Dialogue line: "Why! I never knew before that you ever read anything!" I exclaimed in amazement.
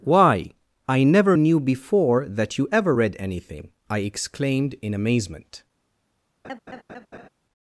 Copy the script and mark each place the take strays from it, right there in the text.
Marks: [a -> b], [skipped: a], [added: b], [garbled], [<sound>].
"Why! I never knew before that you ever read anything!" I exclaimed in amazement. [laugh]